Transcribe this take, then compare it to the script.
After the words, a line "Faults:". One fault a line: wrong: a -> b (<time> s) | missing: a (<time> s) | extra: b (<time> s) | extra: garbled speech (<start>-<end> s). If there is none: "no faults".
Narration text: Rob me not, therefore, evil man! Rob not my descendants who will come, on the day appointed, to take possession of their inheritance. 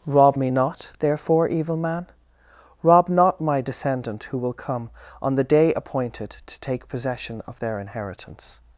Rob me not, therefore, evil man! Rob not my descendant who will come, on the day appointed, to take possession of their inheritance.
Faults:
wrong: descendants -> descendant (3.6 s)